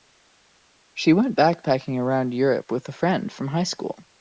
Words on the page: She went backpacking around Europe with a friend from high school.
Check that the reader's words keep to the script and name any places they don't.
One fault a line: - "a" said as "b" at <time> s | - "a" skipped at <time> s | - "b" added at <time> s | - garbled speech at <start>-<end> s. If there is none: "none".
none